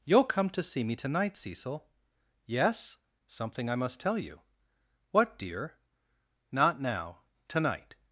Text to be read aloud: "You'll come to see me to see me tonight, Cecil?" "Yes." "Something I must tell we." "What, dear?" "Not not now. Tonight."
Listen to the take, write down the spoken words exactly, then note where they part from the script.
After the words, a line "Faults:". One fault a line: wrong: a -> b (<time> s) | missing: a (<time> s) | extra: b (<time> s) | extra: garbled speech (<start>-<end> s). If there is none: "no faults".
"You'll come to see me tonight, Cecil?" "Yes." "Something I must tell you." "What, dear?" "Not now. Tonight."
Faults:
missing: to see me (0.9 s)
wrong: we -> you (4.2 s)
missing: not (6.8 s)